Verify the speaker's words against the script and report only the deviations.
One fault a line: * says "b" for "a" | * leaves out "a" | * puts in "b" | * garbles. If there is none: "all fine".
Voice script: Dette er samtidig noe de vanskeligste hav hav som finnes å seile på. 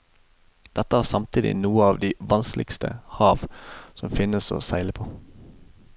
* puts in "av"
* leaves out "hav"